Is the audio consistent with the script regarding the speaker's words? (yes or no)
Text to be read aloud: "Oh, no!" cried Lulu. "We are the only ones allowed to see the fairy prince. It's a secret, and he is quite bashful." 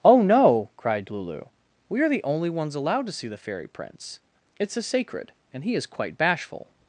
no